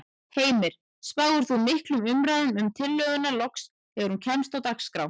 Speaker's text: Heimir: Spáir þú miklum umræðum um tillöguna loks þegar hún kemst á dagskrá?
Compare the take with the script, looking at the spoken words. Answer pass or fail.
pass